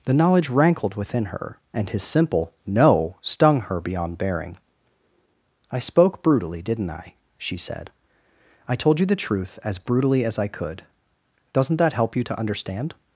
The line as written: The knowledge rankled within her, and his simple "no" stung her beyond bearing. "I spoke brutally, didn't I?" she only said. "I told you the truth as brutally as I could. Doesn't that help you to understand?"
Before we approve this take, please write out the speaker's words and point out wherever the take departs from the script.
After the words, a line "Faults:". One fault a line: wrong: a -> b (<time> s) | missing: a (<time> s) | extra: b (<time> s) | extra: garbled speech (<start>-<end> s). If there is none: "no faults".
The knowledge rankled within her, and his simple "no" stung her beyond bearing. "I spoke brutally, didn't I?" she said. "I told you the truth as brutally as I could. Doesn't that help you to understand?"
Faults:
missing: only (7.6 s)